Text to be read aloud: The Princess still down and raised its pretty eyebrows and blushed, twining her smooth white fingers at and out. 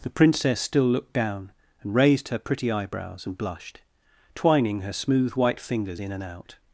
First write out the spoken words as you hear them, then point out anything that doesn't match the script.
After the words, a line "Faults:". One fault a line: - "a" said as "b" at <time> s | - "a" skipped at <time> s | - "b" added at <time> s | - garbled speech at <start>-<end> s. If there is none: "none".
The Princess still looked down and raised her pretty eyebrows and blushed, twining her smooth white fingers in and out.
Faults:
- "looked" added at 0.9 s
- "its" said as "her" at 2.3 s
- "at" said as "in" at 6.0 s